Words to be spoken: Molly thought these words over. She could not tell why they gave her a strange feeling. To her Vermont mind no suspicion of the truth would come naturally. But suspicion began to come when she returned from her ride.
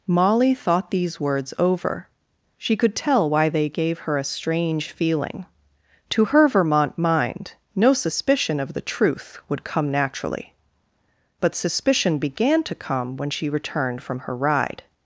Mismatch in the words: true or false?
true